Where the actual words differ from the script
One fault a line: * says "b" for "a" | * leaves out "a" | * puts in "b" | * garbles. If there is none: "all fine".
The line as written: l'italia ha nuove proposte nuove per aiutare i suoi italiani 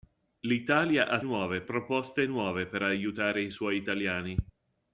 all fine